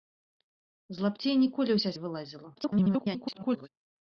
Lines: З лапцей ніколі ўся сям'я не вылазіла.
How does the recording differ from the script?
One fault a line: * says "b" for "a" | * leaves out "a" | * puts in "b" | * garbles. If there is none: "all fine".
* leaves out "сям'я"
* garbles